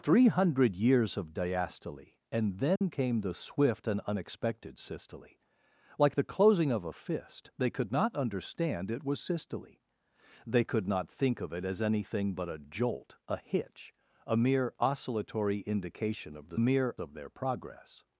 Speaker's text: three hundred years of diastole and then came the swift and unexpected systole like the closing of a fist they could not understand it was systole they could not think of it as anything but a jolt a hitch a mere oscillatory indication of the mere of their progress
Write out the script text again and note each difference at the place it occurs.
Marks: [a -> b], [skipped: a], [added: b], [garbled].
three hundred years of diastole and then came the swift and unexpected systole like the closing of a fist they could not understand it was systole they could not think of it as anything but a jolt a hitch a mere oscillatory indication of the mere of their progress